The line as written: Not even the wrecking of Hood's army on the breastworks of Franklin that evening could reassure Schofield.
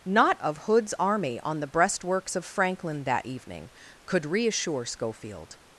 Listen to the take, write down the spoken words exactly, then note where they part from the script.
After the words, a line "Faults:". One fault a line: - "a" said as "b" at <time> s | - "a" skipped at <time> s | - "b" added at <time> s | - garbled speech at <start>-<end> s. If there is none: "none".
Not of Hood's army on the breastworks of Franklin that evening could reassure Schofield.
Faults:
- "even the wrecking" skipped at 0.3 s